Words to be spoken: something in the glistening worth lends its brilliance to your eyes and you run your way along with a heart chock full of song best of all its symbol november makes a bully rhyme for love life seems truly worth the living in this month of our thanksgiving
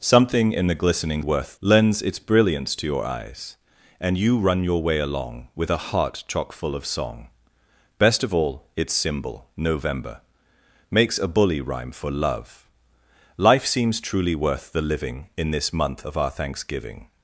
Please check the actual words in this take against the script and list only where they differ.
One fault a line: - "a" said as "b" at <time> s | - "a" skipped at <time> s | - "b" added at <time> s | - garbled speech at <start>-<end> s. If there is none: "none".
none